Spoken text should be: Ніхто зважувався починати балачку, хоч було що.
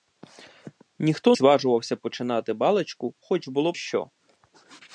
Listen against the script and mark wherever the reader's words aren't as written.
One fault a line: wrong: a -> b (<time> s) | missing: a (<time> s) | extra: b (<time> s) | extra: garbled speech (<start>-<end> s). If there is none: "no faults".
no faults